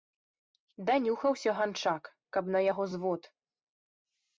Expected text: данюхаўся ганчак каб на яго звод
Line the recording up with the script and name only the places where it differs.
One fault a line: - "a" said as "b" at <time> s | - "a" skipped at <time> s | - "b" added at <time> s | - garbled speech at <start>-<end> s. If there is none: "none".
none